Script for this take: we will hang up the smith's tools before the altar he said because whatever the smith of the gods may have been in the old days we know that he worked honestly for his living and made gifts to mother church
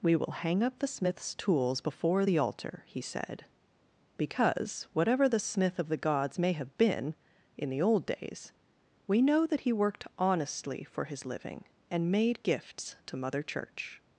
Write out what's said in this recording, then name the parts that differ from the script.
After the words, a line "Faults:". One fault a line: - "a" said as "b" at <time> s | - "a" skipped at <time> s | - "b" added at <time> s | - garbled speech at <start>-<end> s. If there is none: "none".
we will hang up the smith's tools before the altar he said because whatever the smith of the gods may have been in the old days we know that he worked honestly for his living and made gifts to mother church
Faults:
none